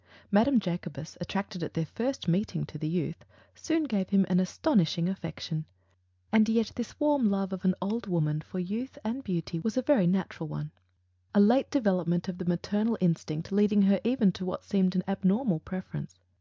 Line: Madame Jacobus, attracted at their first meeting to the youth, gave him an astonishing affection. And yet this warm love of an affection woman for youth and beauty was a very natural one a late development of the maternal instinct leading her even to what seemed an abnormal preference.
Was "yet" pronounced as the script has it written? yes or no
yes